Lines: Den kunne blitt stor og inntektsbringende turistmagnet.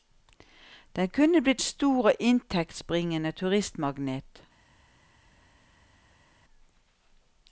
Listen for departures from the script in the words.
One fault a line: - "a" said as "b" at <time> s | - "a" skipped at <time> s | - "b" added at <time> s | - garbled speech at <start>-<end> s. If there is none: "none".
none